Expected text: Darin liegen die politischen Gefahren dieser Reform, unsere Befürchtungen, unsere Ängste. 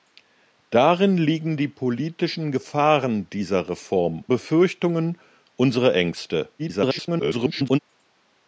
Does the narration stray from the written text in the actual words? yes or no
yes